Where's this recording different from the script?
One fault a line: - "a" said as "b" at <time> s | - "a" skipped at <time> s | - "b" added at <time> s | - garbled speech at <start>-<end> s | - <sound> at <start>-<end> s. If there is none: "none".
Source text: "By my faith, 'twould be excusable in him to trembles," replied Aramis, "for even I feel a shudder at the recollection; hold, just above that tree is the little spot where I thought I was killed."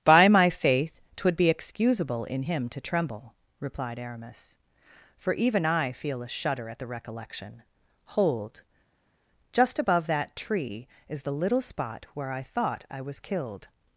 - "trembles" said as "tremble" at 2.8 s